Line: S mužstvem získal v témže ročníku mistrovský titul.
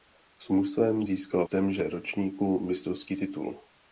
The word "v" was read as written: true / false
false